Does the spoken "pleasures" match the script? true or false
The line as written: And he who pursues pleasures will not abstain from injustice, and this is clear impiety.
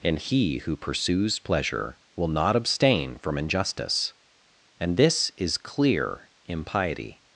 false